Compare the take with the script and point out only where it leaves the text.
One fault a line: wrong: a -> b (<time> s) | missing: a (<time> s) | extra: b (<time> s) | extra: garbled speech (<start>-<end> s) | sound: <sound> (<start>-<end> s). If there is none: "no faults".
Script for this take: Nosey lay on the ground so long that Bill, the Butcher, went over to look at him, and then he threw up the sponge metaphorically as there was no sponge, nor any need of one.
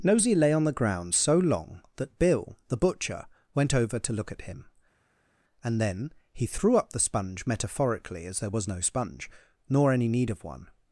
no faults